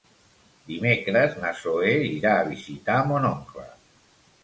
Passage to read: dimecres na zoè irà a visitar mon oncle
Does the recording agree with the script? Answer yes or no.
yes